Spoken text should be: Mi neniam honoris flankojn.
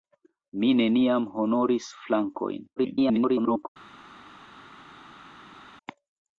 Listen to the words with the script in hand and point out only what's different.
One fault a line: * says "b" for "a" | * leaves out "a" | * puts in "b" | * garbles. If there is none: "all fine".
* garbles